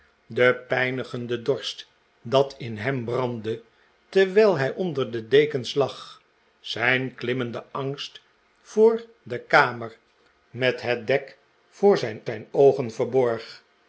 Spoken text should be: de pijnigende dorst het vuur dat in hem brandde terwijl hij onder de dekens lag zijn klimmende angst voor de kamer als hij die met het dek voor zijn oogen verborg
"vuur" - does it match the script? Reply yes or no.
no